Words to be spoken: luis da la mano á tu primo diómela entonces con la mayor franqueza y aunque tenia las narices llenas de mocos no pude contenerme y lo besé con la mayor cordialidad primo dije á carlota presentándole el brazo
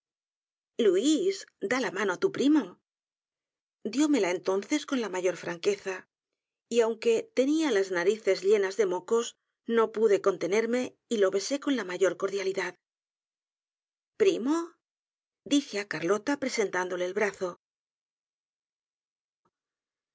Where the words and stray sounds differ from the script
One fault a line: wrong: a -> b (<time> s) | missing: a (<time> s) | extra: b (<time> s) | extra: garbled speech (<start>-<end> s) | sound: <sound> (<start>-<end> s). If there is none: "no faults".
no faults